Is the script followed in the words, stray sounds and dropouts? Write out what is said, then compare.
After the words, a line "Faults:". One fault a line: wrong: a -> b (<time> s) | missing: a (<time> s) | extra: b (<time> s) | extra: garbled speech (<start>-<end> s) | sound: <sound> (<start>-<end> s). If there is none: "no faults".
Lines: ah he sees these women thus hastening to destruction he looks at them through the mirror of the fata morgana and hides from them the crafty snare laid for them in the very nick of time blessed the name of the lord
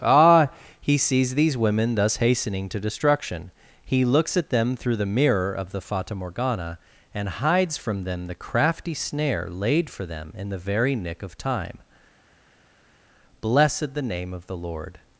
ah he sees these women thus hastening to destruction he looks at them through the mirror of the fata morgana and hides from them the crafty snare laid for them in the very nick of time blessed the name of the lord
Faults:
no faults